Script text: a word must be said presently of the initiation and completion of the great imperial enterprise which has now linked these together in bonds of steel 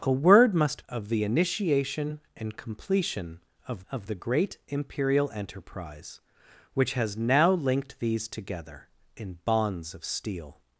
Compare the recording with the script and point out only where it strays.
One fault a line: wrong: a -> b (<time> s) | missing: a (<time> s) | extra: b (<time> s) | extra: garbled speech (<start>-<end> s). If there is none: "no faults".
missing: be said presently (0.8 s)
extra: of (3.9 s)